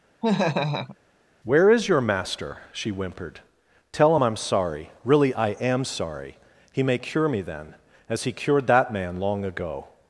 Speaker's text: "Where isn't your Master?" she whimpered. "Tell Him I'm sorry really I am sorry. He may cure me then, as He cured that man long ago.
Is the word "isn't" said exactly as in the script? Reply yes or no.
no